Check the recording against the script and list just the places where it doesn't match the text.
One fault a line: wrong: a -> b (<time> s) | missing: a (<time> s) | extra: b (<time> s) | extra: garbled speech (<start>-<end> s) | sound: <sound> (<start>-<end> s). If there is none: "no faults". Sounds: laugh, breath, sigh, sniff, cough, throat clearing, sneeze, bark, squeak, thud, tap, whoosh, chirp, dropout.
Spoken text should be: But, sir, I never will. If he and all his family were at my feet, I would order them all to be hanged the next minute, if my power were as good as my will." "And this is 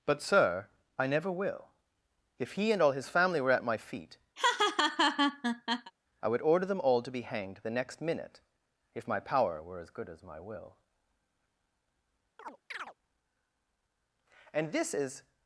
sound: laugh (4.4-5.9 s)
sound: chirp (12.4-12.9 s)